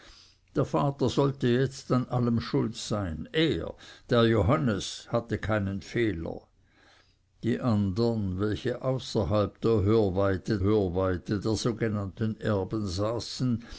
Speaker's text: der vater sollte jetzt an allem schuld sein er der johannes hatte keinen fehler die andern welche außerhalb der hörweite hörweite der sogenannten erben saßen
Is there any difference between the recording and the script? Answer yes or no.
no